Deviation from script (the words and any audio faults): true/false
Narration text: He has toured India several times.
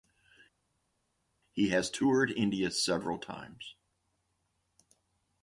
false